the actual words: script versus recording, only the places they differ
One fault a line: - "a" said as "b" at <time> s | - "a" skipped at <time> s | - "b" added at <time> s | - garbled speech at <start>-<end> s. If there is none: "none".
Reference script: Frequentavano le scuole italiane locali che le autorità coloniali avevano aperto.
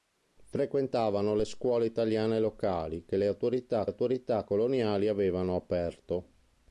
- "autorità" added at 3.9 s